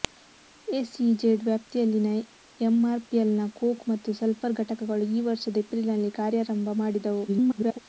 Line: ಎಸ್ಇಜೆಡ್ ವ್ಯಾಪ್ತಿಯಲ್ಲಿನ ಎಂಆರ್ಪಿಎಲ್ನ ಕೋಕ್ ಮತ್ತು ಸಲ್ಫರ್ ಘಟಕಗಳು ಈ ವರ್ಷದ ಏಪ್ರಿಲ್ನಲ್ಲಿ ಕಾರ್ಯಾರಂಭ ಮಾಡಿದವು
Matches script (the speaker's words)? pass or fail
fail